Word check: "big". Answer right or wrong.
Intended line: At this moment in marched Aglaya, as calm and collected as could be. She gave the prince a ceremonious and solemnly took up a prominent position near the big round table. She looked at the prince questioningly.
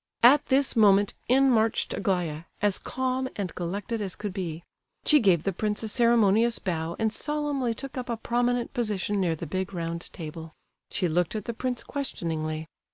right